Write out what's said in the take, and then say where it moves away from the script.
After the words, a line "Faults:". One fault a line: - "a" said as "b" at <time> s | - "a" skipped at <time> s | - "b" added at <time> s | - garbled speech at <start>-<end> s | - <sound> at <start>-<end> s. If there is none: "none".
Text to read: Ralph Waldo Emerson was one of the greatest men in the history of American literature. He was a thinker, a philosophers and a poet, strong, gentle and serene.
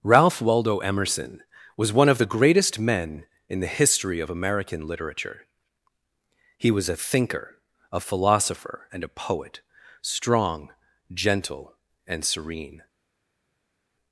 Ralph Waldo Emerson was one of the greatest men in the history of American literature. He was a thinker, a philosopher and a poet, strong, gentle and serene.
Faults:
- "philosophers" said as "philosopher" at 8.0 s